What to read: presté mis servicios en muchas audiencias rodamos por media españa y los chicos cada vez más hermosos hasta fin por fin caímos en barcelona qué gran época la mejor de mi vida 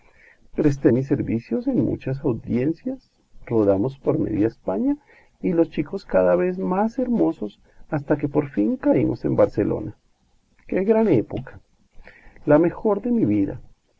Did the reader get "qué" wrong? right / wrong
right